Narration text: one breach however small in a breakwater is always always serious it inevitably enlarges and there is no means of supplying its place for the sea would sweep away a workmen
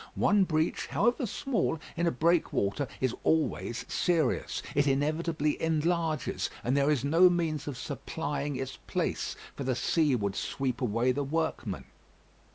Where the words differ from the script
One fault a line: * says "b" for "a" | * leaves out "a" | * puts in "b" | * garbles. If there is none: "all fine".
* leaves out "always"
* says "the" for "a"